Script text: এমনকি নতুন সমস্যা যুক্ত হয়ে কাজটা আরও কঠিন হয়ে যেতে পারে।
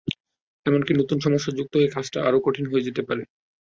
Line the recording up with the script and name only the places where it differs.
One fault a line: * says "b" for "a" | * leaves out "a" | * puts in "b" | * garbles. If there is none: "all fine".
all fine